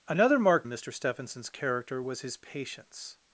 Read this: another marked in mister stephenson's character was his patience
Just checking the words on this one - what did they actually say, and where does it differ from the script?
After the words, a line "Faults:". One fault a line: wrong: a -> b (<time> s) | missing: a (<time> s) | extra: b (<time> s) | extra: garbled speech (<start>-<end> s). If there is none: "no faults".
another marked in mister stephenson's character was his patience
Faults:
no faults